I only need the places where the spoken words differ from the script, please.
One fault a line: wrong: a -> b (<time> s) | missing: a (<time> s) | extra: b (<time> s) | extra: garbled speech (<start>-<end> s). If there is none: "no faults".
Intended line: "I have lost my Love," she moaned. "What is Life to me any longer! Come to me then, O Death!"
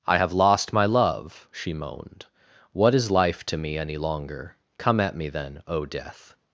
wrong: to -> at (5.0 s)